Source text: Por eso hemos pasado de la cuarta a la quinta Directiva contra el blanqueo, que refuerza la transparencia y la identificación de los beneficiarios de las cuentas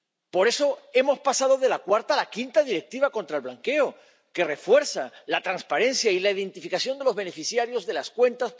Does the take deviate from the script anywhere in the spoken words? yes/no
no